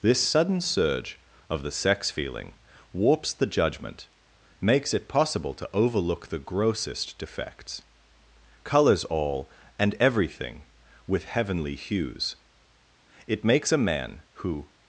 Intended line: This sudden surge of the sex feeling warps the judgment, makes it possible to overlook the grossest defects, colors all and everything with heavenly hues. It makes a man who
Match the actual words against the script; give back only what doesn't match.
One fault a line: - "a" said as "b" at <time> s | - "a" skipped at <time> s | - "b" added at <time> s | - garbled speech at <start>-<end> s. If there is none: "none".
none